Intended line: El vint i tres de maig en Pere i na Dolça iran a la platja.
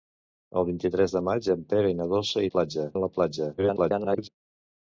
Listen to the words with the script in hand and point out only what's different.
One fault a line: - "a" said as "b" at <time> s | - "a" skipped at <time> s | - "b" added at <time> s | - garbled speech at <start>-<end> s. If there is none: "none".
- "iran" said as "platja" at 2.5 s
- garbled speech at 3.6-4.3 s